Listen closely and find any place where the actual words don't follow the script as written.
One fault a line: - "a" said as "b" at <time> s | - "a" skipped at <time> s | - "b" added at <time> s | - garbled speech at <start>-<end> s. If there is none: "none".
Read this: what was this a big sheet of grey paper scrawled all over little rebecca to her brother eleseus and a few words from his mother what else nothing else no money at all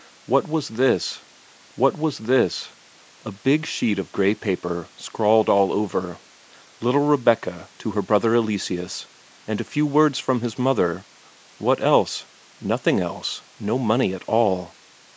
- "what was this" added at 1.7 s